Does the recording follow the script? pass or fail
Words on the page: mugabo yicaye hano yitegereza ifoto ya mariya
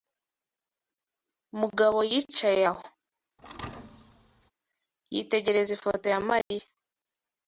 fail